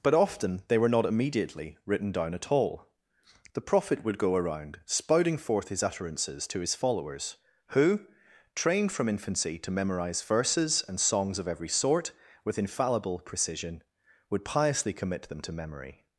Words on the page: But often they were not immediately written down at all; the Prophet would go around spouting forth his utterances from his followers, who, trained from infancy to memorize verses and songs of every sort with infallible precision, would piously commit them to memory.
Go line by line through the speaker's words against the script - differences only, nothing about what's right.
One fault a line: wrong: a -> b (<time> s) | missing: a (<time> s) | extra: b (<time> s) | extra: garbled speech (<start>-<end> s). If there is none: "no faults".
wrong: from -> to (6.5 s)